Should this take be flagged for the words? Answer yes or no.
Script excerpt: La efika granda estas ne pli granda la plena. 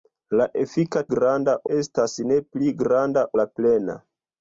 no